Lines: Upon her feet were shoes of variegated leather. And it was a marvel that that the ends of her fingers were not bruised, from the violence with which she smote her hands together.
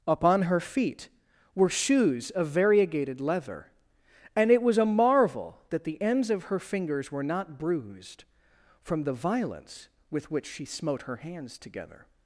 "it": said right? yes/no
yes